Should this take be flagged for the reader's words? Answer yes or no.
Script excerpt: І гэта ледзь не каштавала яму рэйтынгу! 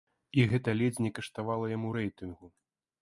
no